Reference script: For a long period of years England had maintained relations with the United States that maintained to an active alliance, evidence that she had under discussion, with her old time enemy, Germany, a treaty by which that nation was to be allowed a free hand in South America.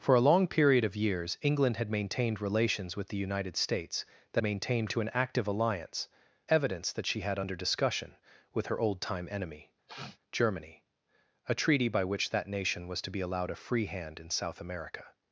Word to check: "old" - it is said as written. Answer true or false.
true